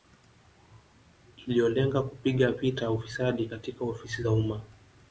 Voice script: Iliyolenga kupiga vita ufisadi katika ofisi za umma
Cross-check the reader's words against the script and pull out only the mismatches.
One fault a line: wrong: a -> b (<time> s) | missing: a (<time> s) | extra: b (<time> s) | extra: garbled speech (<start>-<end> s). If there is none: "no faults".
no faults